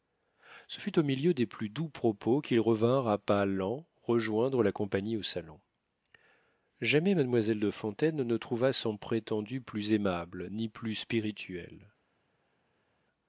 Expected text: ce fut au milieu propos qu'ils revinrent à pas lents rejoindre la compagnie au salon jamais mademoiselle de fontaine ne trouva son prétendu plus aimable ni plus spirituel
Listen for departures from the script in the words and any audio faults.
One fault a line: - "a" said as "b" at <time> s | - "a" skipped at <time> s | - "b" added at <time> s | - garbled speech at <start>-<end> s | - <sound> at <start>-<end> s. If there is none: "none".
- "des plus doux" added at 1.3 s